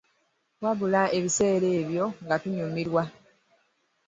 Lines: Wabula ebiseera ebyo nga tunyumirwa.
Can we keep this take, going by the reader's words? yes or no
yes